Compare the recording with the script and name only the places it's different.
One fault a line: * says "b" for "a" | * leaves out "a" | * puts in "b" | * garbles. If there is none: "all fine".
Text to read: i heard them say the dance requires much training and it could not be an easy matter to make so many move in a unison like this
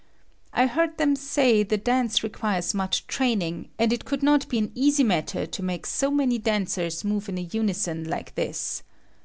* puts in "dancers"